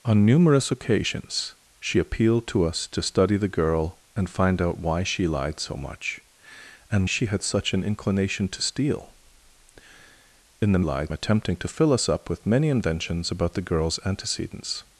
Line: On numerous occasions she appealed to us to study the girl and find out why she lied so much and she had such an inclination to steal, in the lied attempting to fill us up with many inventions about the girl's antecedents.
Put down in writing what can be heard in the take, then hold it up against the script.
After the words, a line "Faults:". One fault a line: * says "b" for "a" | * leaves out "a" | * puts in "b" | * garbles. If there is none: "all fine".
On numerous occasions she appealed to us to study the girl and find out why she lied so much and she had such an inclination to steal, in the lied attempting to fill us up with many inventions about the girl's antecedents.
Faults:
all fine